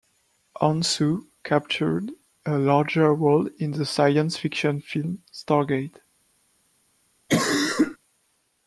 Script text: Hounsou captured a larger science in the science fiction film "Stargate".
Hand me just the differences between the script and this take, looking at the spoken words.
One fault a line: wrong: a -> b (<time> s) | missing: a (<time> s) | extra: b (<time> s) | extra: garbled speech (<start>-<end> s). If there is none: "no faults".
wrong: science -> role (3.1 s)